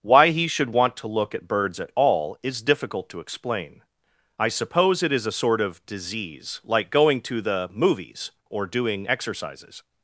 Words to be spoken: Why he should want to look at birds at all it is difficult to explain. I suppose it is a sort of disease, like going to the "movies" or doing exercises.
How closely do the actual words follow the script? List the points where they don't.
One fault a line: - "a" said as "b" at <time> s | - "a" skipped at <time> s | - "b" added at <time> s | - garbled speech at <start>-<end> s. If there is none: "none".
- "it" skipped at 2.4 s